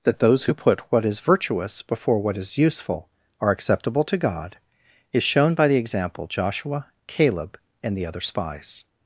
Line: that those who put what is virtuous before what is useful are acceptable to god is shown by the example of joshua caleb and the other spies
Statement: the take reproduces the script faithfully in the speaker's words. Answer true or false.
false